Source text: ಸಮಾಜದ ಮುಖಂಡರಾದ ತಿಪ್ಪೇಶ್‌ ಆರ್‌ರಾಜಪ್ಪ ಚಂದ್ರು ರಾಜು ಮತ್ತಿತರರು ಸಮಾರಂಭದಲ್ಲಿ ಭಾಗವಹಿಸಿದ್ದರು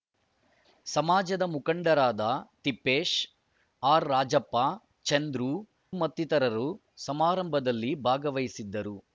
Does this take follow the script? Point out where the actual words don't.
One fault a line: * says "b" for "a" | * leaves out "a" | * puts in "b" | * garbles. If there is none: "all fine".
* leaves out "ರಾಜು"